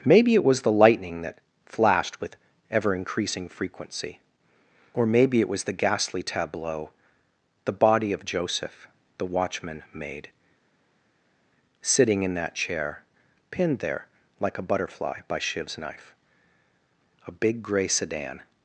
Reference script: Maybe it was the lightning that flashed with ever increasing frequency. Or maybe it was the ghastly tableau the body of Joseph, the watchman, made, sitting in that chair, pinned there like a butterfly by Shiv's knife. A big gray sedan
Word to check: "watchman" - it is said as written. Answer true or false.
true